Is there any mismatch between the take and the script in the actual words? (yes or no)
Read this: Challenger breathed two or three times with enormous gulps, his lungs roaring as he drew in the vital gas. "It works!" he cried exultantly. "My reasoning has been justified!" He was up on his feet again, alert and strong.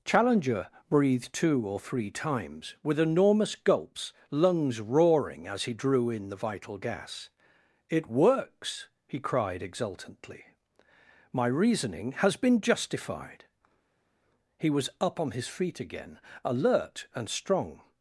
yes